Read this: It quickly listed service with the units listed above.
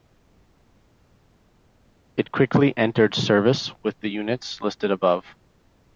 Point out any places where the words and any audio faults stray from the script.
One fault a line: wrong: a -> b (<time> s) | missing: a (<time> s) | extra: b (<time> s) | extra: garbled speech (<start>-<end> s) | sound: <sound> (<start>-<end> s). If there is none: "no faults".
wrong: listed -> entered (2.8 s)